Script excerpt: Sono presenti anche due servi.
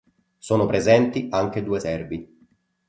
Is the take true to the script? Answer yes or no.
yes